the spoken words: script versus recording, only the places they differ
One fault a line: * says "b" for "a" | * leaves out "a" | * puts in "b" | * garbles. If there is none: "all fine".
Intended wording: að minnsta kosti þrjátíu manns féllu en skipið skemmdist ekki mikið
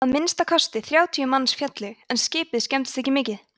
all fine